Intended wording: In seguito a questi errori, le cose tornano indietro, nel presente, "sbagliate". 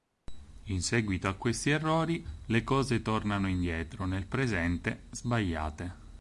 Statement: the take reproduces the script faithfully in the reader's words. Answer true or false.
true